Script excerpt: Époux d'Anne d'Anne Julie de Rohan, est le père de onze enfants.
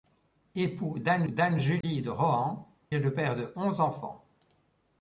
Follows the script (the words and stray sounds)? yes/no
no